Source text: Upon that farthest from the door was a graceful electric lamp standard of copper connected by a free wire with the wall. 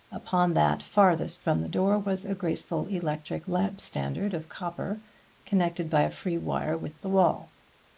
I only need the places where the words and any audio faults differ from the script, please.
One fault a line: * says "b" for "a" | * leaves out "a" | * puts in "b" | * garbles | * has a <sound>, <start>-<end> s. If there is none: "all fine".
all fine